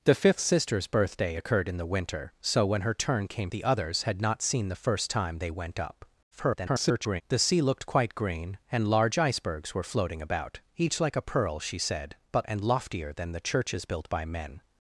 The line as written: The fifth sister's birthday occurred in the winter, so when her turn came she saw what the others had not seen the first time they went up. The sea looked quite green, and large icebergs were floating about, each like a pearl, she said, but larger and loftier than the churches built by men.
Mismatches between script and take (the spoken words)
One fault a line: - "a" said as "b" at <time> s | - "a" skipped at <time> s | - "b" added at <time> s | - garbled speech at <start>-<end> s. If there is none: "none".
- "she saw what" skipped at 3.5 s
- garbled speech at 6.3-7.2 s
- "larger" skipped at 12.5 s